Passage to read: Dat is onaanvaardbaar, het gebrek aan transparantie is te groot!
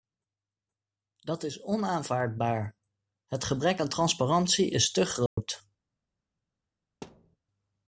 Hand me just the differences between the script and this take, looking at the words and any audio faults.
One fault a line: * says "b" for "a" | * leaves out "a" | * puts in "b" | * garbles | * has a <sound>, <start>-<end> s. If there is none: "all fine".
* has a dropout, 5.3-5.4 s
* has a thud, 7.0-7.4 s